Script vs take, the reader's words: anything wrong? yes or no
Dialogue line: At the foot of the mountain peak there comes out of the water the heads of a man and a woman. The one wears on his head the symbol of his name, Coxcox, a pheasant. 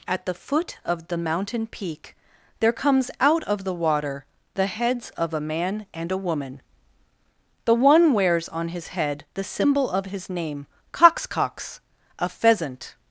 no